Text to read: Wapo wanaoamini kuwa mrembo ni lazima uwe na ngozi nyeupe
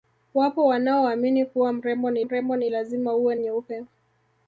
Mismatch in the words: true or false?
true